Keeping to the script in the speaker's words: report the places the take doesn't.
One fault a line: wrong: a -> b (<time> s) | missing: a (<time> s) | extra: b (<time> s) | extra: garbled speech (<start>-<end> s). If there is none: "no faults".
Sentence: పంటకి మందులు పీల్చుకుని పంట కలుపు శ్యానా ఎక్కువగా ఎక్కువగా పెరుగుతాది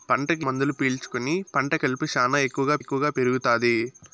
no faults